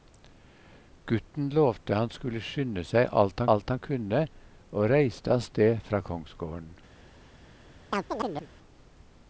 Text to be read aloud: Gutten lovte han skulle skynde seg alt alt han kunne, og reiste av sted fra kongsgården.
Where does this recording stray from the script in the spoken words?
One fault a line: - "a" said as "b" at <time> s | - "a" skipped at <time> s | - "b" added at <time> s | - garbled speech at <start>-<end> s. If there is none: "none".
none